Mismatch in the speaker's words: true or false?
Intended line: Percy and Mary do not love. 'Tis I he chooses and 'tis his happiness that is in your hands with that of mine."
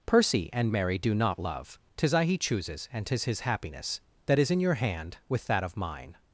true